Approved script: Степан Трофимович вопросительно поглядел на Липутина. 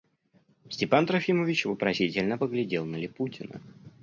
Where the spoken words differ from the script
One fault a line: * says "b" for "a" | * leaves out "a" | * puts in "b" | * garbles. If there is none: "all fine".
all fine